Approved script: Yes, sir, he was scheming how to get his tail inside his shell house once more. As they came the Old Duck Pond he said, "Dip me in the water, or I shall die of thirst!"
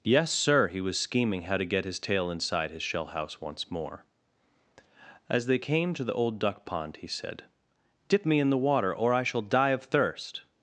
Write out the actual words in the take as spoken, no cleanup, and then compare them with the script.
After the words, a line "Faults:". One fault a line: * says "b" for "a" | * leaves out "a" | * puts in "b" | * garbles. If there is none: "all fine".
Yes, sir, he was scheming how to get his tail inside his shell house once more. As they came to the Old Duck Pond he said, "Dip me in the water, or I shall die of thirst!"
Faults:
* puts in "to"